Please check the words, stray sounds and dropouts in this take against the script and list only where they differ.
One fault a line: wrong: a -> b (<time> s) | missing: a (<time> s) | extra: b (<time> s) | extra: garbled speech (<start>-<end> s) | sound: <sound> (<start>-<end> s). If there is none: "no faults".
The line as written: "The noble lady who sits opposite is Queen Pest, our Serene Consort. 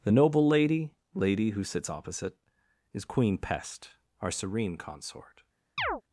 extra: lady (1.1 s)
sound: chirp (5.8-6.0 s)